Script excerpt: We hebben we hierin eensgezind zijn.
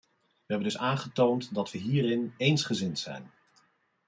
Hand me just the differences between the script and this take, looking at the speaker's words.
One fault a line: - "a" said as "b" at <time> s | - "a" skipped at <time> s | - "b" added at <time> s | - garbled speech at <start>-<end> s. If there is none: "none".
- "dus aangetoond dat" added at 0.7 s